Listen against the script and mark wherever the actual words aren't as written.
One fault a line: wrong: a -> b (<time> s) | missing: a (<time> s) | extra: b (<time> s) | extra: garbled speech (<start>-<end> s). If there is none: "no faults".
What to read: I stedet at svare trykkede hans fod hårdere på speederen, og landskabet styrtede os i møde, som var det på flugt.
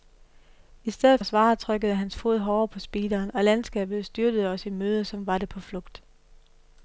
no faults